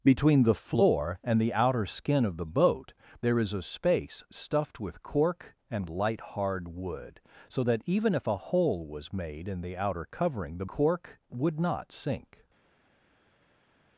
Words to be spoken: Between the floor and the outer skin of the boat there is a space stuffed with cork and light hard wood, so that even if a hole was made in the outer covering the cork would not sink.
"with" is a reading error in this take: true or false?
false